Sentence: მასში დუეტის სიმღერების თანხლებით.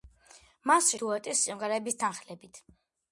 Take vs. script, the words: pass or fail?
pass